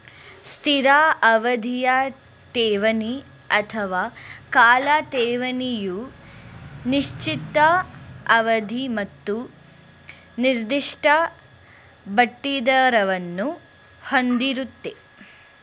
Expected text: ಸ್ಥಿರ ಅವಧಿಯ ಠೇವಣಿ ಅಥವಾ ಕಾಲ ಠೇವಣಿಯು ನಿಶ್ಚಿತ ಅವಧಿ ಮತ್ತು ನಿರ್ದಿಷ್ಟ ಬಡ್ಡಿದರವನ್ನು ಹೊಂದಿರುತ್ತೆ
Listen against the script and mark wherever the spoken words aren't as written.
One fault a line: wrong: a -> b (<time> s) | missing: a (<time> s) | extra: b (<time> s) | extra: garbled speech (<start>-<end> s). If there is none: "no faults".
no faults